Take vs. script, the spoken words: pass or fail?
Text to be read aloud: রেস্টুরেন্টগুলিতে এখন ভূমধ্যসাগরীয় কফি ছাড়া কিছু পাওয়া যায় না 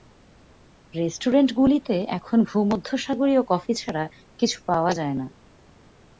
pass